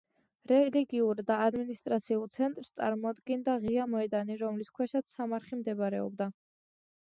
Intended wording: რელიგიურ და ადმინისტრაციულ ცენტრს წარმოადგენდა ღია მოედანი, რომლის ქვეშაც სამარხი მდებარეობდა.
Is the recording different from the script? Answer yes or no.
no